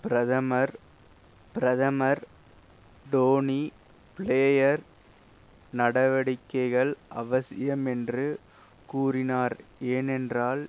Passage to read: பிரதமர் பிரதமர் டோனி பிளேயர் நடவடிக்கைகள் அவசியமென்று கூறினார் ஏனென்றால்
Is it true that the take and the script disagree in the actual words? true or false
false